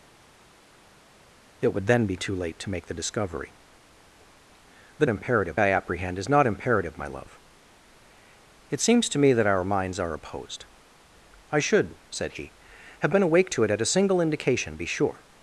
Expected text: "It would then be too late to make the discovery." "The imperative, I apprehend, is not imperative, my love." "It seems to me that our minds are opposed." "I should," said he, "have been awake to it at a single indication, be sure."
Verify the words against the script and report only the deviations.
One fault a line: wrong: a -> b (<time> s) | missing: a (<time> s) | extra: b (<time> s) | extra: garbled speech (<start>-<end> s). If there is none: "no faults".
no faults